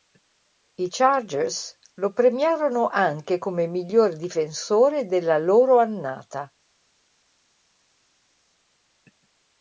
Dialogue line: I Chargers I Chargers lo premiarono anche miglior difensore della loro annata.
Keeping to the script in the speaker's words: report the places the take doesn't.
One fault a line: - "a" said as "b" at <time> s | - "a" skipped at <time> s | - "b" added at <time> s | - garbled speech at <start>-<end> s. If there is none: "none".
- "I Chargers" skipped at 1.8 s
- "come" added at 3.4 s